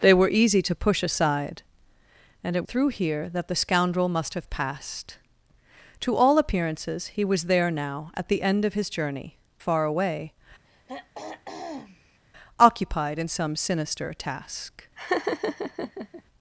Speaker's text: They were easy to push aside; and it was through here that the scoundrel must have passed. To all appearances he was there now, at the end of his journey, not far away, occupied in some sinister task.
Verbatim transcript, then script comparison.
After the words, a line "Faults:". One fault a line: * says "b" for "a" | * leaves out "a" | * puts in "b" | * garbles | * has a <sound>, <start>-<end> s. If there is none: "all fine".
They were easy to push aside; and it through here that the scoundrel must have passed. To all appearances he was there now, at the end of his journey, far away, occupied in some sinister task.
Faults:
* leaves out "was"
* leaves out "not"
* has a throat clearing, 10.7-12.2 s
* has a laugh, 15.0-16.2 s